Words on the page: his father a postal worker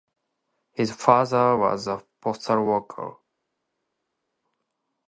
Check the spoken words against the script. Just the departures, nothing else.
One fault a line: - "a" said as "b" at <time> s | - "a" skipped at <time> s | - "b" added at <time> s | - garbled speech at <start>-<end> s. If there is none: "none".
- "was" added at 1.6 s